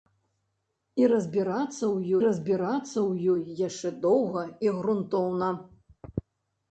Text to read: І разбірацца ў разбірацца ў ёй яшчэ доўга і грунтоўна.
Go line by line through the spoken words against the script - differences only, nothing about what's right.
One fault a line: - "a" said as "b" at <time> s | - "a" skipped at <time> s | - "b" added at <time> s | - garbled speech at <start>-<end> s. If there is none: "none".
none